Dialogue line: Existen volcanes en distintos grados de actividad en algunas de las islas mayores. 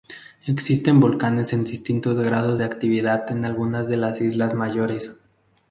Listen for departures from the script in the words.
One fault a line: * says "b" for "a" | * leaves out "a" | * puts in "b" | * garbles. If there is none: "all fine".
all fine